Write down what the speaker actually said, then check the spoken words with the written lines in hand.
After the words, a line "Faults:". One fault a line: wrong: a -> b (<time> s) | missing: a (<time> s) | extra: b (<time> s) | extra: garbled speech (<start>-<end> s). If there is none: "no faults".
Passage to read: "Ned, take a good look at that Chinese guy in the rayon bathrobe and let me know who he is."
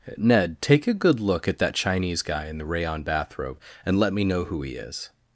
"Ned, take a good look at that Chinese guy in the rayon bathrobe and let me know who he is."
Faults:
no faults